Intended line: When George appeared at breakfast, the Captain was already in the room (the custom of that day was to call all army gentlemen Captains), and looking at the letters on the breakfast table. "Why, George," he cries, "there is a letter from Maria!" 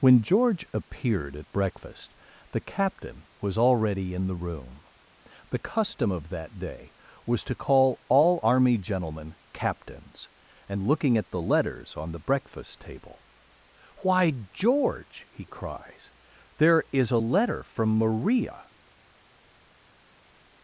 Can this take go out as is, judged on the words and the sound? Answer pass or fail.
pass